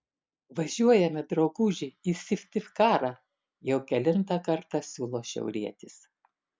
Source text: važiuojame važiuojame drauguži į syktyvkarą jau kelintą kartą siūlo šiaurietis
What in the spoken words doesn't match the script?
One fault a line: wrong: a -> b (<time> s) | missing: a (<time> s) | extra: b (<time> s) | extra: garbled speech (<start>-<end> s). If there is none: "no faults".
missing: važiuojame (1.2 s)